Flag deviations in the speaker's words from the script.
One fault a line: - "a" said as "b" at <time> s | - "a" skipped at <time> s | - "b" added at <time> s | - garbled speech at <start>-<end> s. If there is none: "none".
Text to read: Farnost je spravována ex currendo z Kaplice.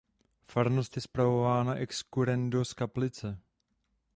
none